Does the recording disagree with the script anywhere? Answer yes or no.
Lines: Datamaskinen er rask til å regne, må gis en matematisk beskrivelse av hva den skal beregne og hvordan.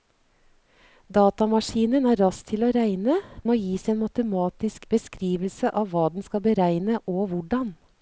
no